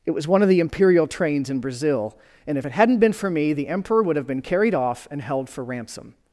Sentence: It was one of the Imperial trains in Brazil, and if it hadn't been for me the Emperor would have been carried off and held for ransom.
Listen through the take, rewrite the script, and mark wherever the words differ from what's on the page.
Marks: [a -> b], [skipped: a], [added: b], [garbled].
It was one of the Imperial trains in Brazil, and if it hadn't been for me the Emperor would have been carried off and held for ransom.